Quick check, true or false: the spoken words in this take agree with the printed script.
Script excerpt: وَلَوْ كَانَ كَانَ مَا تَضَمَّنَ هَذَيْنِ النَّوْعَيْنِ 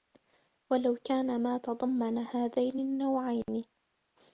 false